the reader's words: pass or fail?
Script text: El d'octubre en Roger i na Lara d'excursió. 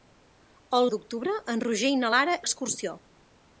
pass